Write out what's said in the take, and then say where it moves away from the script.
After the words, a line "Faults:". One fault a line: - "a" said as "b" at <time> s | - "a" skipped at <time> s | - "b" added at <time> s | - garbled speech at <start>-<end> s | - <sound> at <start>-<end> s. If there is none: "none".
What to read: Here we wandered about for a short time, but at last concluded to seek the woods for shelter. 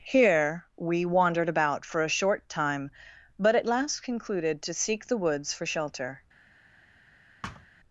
Here we wandered about for a short time, but at last concluded to seek the woods for shelter.
Faults:
- thud at 7.4-7.7 s